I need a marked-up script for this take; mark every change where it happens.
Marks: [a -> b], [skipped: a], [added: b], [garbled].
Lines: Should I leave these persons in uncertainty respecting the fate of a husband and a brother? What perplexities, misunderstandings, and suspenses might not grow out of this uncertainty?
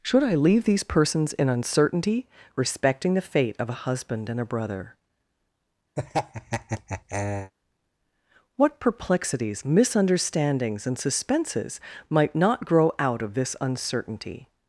Should I leave these persons in uncertainty respecting the fate of a husband and a brother? What perplexities, misunderstandings, and suspenses might not grow out of this uncertainty?